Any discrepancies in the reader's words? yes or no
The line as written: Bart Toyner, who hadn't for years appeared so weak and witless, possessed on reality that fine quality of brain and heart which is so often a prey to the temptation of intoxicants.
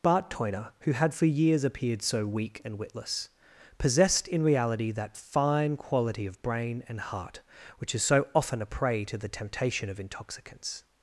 yes